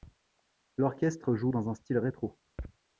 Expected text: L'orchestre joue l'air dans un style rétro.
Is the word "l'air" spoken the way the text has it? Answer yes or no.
no